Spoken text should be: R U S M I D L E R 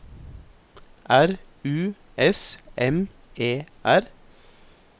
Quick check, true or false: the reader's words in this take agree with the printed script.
false